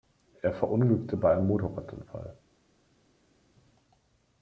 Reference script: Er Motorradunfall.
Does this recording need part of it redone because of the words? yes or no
yes